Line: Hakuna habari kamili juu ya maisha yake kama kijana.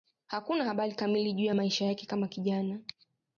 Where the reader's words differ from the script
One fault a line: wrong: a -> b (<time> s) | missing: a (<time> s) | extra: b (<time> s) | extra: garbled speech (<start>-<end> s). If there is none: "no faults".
no faults